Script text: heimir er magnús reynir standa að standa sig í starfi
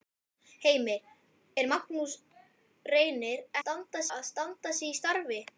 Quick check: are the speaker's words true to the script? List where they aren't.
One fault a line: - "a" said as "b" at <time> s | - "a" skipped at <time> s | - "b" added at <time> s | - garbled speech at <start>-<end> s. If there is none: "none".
none